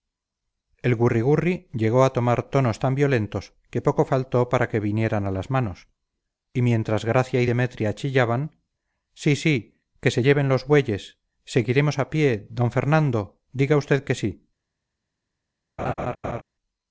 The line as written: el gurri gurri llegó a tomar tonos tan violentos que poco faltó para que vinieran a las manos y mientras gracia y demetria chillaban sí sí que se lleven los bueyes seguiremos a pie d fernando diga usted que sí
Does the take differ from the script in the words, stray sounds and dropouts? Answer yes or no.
yes